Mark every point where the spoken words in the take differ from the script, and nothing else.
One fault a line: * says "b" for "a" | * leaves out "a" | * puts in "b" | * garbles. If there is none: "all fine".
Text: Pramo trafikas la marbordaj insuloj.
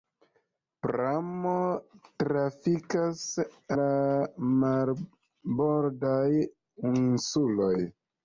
all fine